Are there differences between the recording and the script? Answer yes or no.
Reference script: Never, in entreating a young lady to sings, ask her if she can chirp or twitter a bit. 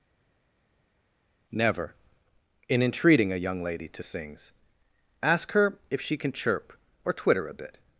no